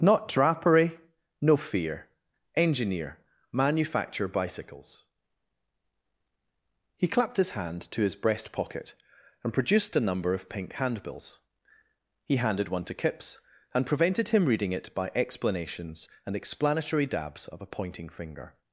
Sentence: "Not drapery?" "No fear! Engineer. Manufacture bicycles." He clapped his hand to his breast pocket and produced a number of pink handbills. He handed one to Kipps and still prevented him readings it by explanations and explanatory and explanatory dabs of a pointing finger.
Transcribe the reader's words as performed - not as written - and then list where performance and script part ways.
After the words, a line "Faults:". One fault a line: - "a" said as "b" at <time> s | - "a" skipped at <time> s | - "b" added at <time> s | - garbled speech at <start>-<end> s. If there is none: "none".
"Not drapery?" "No fear! Engineer. Manufacture bicycles." He clapped his hand to his breast pocket and produced a number of pink handbills. He handed one to Kipps and prevented him reading it by explanations and explanatory dabs of a pointing finger.
Faults:
- "still" skipped at 13.8 s
- "readings" said as "reading" at 14.5 s
- "and explanatory" skipped at 17.1 s